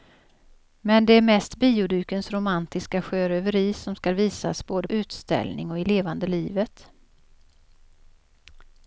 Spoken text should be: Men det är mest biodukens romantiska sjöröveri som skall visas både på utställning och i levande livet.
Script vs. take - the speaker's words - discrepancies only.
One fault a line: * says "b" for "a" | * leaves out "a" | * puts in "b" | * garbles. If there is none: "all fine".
* leaves out "på"